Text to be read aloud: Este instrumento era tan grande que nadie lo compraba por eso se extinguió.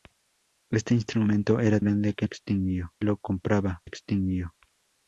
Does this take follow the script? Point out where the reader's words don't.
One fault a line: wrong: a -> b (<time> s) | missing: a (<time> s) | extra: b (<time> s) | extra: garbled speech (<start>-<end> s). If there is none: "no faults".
missing: tan (1.8 s)
wrong: nadie -> extinguió (2.2 s)
missing: por eso se (3.8 s)